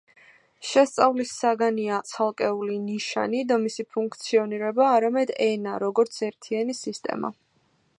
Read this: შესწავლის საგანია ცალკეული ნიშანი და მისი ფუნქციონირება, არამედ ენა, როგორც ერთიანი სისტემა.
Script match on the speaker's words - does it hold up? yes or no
yes